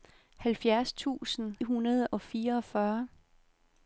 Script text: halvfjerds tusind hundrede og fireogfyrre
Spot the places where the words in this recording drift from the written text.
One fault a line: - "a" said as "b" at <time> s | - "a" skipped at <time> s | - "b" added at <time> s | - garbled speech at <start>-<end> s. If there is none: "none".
none